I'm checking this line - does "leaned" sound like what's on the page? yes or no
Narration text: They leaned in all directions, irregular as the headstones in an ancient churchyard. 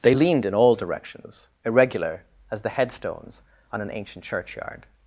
yes